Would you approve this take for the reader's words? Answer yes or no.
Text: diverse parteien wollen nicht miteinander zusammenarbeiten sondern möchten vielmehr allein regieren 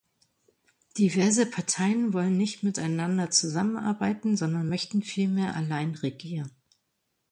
yes